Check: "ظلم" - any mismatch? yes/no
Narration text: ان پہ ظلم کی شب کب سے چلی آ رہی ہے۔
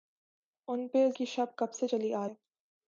yes